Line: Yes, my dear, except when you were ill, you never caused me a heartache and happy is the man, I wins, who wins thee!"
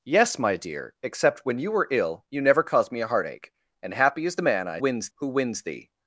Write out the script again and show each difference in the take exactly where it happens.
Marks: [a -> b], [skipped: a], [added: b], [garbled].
Yes, my dear, except when you were ill, you never caused me a heartache and happy is the man, I wins, who wins thee!"